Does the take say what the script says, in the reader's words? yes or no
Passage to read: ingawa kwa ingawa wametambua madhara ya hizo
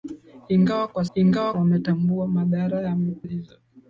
yes